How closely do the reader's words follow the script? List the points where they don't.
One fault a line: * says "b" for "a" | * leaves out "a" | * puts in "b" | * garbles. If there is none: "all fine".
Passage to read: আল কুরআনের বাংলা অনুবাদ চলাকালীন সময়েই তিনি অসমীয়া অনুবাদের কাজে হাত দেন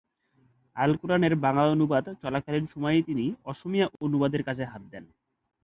all fine